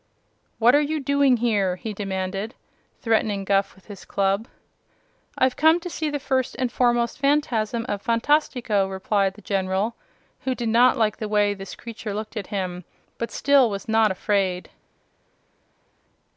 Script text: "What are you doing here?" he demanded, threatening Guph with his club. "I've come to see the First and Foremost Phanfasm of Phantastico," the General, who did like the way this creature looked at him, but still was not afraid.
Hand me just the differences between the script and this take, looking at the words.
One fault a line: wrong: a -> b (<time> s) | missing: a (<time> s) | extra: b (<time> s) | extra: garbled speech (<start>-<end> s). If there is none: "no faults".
extra: replied (8.9 s)
extra: not (10.7 s)